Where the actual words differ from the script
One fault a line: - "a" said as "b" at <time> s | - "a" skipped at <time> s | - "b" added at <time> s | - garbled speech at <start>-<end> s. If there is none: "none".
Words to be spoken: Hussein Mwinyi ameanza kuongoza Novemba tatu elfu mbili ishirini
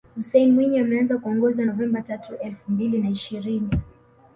- "na" added at 3.0 s